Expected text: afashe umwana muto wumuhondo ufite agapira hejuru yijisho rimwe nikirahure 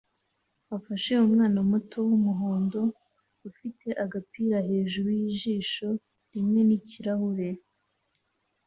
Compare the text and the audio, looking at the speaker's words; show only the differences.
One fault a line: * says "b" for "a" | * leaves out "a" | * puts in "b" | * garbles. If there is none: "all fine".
all fine